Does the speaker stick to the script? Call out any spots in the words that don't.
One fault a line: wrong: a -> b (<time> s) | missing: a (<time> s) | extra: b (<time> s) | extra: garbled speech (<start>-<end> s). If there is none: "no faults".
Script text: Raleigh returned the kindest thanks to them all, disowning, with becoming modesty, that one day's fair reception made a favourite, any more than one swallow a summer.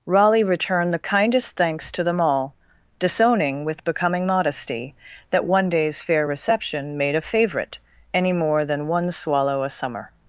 no faults